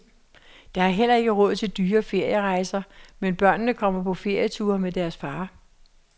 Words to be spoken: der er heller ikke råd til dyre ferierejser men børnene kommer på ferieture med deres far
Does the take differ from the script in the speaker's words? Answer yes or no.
no